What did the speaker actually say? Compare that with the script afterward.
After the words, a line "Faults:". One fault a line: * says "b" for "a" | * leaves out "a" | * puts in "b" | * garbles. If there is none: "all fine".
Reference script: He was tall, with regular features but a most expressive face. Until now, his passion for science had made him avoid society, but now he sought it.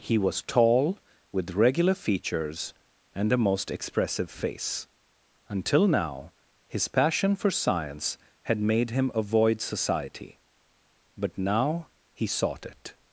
He was tall, with regular features and a most expressive face. Until now, his passion for science had made him avoid society, but now he sought it.
Faults:
* says "and" for "but"